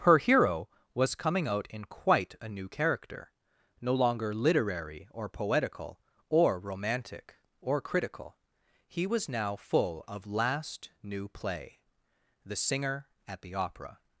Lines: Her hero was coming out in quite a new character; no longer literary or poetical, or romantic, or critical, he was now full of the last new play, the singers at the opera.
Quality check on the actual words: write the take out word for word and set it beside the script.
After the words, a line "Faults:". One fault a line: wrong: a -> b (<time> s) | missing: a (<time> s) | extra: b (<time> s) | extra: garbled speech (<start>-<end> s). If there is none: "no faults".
Her hero was coming out in quite a new character; no longer literary or poetical, or romantic, or critical, he was now full of last new play, the singer at the opera.
Faults:
missing: the (10.2 s)
wrong: singers -> singer (12.6 s)